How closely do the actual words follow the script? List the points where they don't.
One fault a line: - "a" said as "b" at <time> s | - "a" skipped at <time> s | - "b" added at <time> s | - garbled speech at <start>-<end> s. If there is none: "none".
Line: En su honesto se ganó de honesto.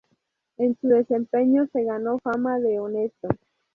- "honesto" said as "desempeño" at 0.9 s
- "fama" added at 2.2 s